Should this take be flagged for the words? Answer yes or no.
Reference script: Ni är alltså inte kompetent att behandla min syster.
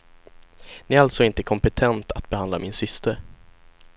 no